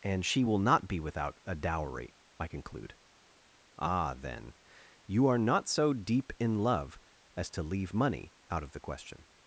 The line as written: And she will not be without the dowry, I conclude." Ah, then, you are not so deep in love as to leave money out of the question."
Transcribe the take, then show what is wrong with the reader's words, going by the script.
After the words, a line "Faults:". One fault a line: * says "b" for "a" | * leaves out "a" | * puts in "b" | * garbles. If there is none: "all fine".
And she will not be without a dowry, I conclude." Ah, then, you are not so deep in love as to leave money out of the question."
Faults:
* says "a" for "the"